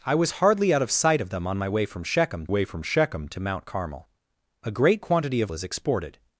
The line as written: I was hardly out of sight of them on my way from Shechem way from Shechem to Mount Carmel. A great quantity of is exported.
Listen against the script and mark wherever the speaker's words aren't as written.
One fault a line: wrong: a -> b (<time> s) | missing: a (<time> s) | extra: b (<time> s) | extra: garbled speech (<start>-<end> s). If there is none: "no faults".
no faults